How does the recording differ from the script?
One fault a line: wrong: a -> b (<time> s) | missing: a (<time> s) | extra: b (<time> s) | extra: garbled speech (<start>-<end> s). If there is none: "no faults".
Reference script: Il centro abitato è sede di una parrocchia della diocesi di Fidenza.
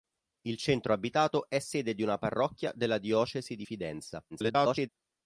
extra: garbled speech (4.3-4.9 s)